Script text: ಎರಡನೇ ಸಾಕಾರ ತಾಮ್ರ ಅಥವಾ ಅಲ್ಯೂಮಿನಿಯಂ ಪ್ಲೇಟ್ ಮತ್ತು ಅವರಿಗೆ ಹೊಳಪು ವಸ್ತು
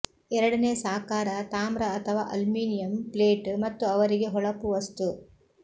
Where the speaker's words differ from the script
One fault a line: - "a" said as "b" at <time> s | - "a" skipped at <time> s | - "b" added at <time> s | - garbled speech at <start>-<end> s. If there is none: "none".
none